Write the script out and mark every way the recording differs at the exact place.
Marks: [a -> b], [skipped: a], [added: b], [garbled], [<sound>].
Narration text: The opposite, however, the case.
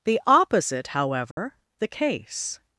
The opposite, however, [dropout] the case.